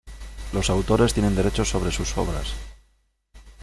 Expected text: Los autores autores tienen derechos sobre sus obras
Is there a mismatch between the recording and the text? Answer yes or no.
yes